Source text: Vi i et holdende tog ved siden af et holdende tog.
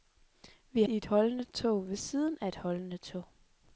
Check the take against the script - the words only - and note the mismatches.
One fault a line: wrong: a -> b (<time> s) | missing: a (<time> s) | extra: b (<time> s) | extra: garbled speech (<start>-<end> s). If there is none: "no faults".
no faults